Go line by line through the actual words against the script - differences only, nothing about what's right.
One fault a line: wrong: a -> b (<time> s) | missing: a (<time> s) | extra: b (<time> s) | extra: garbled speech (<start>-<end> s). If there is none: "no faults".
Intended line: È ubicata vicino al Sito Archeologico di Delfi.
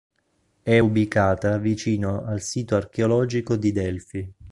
no faults